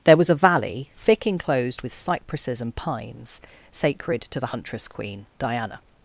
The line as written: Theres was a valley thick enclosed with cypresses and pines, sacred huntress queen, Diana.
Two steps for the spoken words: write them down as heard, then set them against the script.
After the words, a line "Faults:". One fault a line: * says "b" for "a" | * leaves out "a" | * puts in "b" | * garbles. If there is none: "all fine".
There was a valley thick enclosed with cypresses and pines, sacred to the huntress queen, Diana.
Faults:
* says "There" for "Theres"
* puts in "to the"